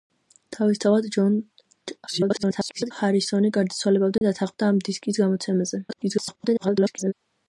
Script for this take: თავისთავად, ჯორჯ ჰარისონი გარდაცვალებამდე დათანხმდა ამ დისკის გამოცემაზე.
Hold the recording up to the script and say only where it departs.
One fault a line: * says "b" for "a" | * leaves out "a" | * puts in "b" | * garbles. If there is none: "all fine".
* garbles
* garbles